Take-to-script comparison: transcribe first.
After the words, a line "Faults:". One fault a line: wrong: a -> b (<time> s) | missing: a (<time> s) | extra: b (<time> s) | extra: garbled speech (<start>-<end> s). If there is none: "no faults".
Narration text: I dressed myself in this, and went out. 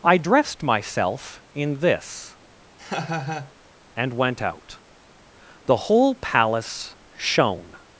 I dressed myself in this, and went out. The whole palace shone
Faults:
extra: The whole palace shone (5.7 s)